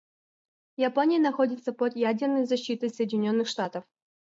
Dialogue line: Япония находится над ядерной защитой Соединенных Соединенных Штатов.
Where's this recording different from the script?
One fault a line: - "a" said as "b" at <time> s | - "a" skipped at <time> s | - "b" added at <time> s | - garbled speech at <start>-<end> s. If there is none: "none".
- "над" said as "под" at 1.7 s
- "Соединенных" skipped at 3.5 s